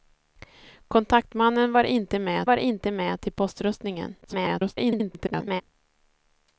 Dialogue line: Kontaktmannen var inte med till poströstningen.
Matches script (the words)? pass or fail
fail